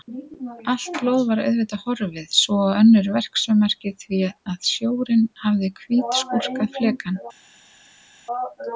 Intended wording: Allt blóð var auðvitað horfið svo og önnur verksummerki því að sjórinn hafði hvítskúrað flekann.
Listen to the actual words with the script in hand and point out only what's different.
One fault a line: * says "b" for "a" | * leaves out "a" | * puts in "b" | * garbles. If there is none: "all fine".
all fine